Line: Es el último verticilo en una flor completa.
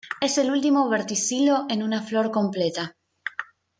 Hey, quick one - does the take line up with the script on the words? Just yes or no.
yes